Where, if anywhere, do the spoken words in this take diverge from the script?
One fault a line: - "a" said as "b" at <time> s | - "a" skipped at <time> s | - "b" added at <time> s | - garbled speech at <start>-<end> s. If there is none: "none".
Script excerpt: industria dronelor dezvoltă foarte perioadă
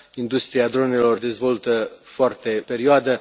none